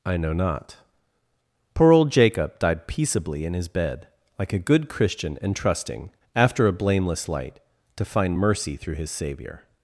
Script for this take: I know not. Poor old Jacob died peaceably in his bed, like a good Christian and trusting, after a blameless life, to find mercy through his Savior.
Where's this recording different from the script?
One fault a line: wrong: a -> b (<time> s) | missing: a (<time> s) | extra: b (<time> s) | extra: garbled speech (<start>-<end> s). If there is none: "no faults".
wrong: life -> light (7.3 s)